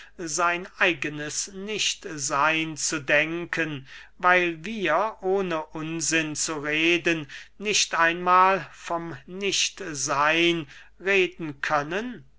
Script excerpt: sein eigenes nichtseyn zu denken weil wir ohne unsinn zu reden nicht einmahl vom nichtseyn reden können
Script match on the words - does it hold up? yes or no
yes